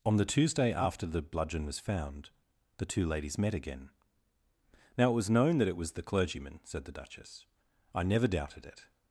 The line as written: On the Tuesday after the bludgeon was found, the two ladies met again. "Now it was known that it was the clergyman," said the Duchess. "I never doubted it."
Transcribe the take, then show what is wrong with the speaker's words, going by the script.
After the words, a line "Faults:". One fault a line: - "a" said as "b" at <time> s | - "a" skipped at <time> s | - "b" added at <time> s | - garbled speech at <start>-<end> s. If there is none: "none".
On the Tuesday after the bludgeon was found, the two ladies met again. "Now it was known that it was the clergyman," said the Duchess. "I never doubted it."
Faults:
none